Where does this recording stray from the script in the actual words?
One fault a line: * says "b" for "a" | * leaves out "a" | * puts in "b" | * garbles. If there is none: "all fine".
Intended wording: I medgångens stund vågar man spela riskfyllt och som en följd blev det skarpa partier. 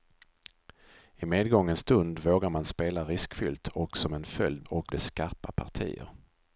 * says "och" for "blev"